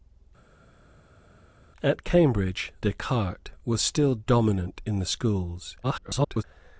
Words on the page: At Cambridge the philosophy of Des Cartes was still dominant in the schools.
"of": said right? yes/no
no